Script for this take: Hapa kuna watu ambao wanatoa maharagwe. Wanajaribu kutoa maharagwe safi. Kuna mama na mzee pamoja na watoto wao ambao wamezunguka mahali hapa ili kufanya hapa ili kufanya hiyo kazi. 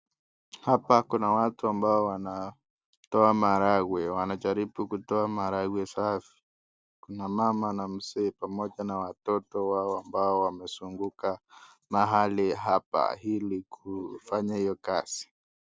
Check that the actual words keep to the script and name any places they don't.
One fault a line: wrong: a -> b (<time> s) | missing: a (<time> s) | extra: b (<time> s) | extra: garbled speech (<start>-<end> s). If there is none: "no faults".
missing: hapa ili kufanya (14.6 s)